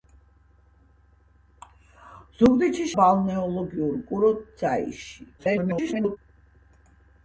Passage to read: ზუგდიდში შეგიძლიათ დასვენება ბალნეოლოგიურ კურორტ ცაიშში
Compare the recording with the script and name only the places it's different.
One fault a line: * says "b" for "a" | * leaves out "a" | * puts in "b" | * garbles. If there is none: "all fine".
* leaves out "შეგიძლიათ დასვენება"
* garbles